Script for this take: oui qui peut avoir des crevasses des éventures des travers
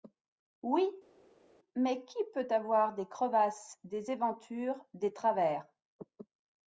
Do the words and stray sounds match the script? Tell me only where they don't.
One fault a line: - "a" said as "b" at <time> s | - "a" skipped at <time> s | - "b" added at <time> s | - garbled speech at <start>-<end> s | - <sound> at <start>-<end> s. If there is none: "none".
- "mais" added at 1.7 s